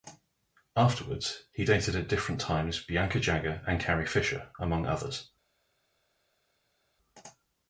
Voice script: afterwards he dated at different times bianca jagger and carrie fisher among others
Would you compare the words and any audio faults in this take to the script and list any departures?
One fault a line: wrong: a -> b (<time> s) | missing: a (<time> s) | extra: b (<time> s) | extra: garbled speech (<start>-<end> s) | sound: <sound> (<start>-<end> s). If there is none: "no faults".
no faults